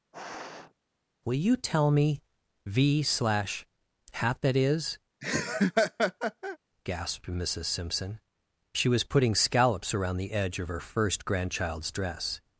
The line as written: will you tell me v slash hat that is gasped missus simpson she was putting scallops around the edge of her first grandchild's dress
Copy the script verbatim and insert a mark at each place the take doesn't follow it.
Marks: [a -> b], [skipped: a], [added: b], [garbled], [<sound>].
[sniff] will you tell me v slash hat that is [laugh] gasped missus simpson she was putting scallops around the edge of her first grandchild's dress